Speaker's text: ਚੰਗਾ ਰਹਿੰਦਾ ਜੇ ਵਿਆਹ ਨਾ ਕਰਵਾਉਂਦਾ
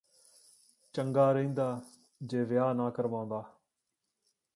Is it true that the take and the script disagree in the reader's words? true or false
false